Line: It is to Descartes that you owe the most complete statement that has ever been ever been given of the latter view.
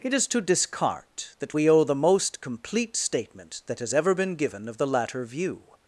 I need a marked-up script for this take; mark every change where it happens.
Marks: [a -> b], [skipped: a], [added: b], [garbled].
It is to Descartes that [you -> we] owe the most complete statement that has ever been [skipped: ever been] given of the latter view.